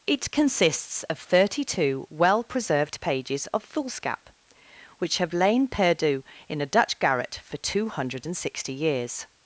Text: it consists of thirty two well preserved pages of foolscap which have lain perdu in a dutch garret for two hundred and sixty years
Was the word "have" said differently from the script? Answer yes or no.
no